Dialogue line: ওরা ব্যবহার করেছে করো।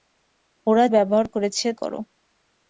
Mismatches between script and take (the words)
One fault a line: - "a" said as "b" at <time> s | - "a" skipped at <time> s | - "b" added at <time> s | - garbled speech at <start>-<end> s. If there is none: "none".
none